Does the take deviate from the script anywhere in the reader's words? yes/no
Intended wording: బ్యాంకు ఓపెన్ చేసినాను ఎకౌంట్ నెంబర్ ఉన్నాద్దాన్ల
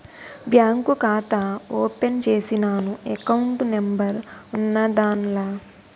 yes